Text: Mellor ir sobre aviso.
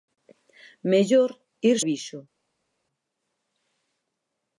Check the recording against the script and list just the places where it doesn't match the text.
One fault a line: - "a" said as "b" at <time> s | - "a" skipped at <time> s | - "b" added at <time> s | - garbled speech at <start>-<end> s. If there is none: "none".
- "sobre" skipped at 1.8 s